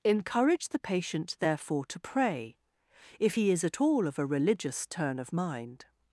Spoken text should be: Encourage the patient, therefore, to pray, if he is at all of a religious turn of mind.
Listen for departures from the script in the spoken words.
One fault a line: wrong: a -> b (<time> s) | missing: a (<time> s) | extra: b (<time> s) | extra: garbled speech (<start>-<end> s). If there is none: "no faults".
no faults